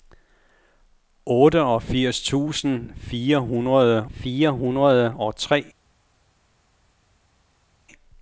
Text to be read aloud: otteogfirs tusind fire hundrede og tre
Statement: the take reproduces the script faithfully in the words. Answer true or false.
false